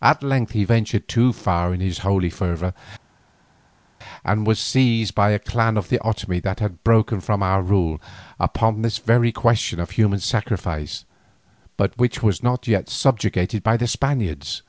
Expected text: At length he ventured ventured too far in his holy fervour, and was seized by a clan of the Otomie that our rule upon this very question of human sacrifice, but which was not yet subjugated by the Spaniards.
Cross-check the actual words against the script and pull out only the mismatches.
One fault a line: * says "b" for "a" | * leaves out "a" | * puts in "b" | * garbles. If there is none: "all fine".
* leaves out "ventured"
* puts in "had broken from"